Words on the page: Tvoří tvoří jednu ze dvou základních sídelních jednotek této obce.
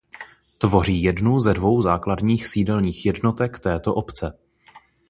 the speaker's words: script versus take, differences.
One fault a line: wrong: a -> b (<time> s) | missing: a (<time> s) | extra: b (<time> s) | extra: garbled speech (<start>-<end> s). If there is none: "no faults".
missing: tvoří (1.0 s)